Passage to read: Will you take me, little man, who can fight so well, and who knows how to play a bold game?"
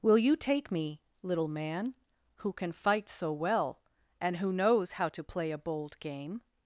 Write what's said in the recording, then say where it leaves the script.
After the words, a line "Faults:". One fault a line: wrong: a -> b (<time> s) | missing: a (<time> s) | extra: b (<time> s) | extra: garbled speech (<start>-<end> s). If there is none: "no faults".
Will you take me, little man, who can fight so well, and who knows how to play a bold game?"
Faults:
no faults